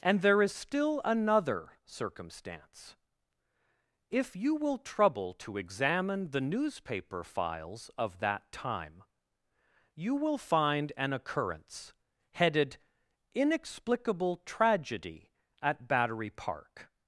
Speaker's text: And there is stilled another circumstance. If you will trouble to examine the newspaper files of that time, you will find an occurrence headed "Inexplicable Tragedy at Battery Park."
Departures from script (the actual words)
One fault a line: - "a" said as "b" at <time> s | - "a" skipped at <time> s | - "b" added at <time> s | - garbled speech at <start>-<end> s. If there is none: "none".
- "stilled" said as "still" at 0.5 s